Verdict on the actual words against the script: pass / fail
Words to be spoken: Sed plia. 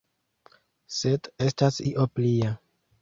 fail